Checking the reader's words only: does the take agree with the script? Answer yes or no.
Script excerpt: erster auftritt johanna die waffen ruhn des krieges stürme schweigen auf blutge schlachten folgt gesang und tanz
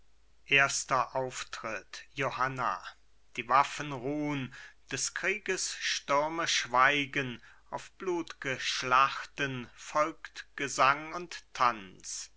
yes